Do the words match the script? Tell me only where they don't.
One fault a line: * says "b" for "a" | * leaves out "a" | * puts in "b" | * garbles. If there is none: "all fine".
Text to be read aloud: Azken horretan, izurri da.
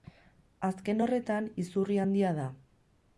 * puts in "handia"